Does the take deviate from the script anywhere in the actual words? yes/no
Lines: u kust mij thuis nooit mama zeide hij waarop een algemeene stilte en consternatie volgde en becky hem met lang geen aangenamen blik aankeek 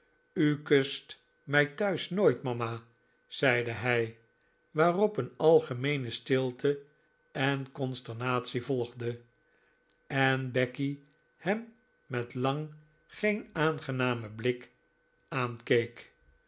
no